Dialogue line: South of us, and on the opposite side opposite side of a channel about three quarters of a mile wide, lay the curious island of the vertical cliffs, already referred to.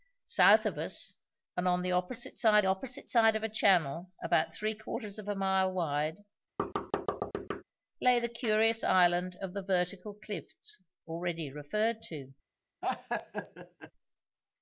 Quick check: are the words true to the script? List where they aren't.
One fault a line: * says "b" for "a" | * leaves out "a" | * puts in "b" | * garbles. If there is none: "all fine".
all fine